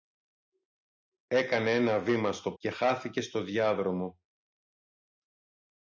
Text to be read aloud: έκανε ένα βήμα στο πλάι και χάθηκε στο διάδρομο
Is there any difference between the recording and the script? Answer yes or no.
yes